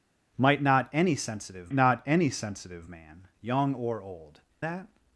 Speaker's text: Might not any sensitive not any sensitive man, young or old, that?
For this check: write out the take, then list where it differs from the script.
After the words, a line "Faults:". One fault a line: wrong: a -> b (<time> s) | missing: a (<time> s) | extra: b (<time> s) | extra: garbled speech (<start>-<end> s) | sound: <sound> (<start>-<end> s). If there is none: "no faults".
Might not any sensitive not any sensitive man, young or old, that?
Faults:
no faults